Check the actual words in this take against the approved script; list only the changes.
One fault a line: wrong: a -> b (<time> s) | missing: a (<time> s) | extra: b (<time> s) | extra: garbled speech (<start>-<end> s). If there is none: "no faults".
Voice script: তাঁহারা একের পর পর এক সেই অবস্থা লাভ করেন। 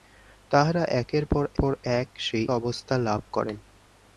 no faults